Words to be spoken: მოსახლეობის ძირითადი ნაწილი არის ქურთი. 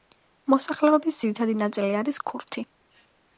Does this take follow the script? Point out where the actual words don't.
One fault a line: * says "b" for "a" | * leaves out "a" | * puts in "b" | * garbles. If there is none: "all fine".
all fine